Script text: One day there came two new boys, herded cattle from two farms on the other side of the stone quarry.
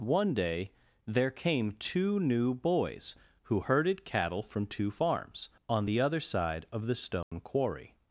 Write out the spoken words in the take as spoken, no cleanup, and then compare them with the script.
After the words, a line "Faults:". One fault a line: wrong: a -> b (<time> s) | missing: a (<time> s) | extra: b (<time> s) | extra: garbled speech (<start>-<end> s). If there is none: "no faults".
One day there came two new boys, who herded cattle from two farms on the other side of the stone quarry.
Faults:
extra: who (3.4 s)